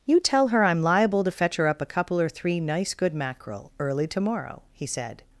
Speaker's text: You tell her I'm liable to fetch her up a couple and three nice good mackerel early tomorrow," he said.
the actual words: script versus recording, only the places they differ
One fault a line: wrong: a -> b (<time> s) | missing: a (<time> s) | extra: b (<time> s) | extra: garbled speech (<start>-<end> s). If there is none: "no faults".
wrong: and -> or (2.2 s)